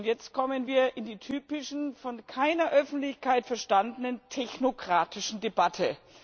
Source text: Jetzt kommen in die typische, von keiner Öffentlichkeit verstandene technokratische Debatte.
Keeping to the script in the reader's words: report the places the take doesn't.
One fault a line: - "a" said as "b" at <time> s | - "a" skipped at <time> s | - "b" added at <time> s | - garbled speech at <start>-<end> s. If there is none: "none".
- "wir" added at 0.6 s